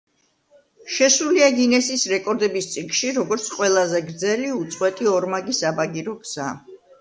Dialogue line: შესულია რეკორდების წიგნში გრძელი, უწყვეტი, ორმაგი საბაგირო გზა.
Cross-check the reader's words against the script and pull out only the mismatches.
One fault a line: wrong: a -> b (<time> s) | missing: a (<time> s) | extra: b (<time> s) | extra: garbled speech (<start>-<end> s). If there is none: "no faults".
extra: გინესის (1.6 s)
extra: როგორც ყველაზე (3.2 s)